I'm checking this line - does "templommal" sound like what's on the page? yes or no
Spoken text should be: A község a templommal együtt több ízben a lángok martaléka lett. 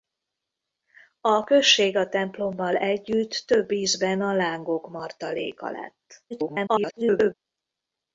yes